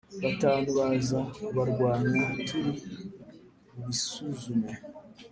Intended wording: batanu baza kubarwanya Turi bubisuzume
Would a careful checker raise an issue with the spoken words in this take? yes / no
no